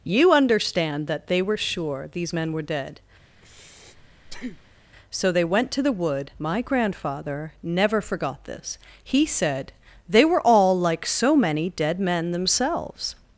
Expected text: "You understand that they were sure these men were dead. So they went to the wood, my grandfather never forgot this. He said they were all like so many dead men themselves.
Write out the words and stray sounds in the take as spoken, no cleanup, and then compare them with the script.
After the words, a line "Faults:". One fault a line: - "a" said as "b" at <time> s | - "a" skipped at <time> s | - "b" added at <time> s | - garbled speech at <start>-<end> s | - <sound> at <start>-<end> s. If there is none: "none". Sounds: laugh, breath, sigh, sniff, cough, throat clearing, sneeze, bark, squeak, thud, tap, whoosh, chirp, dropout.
"You understand that they were sure these men were dead. So they went to the wood, my grandfather never forgot this. He said they were all like so many dead men themselves.
Faults:
- breath at 3.3-4.9 s